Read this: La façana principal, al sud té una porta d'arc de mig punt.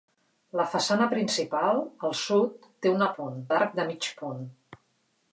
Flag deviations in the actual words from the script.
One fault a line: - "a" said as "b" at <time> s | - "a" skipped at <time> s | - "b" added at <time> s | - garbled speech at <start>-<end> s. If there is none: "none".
- "porta" said as "punt" at 3.2 s